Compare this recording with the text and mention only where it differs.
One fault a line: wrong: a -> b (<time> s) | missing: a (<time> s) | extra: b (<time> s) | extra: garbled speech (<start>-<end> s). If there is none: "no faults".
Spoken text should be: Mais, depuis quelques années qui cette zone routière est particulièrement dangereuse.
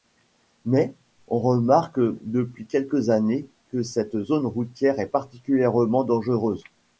extra: on remarque (1.3 s)
wrong: qui -> que (3.7 s)